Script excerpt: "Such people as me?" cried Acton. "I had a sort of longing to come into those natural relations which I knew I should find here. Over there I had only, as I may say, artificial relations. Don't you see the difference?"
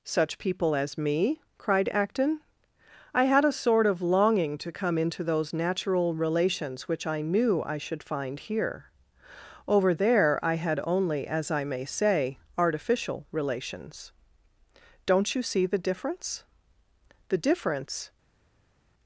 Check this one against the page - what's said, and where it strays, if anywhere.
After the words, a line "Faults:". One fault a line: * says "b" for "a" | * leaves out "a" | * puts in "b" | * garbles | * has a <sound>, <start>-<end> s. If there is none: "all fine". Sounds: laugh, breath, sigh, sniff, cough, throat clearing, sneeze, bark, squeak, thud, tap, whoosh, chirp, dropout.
"Such people as me?" cried Acton. "I had a sort of longing to come into those natural relations which I knew I should find here. Over there I had only, as I may say, artificial relations. Don't you see the difference?" "The difference
Faults:
* puts in "The difference"